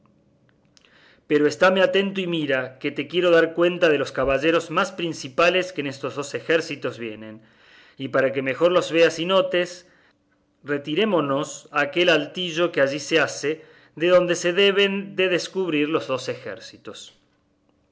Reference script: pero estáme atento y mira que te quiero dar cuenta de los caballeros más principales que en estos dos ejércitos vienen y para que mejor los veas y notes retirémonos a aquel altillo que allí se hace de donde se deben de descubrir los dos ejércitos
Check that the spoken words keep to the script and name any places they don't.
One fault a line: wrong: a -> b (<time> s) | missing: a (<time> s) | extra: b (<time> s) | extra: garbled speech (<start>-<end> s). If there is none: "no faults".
no faults